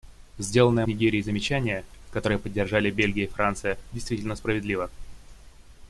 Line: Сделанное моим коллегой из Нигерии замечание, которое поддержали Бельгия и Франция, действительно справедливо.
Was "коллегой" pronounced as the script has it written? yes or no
no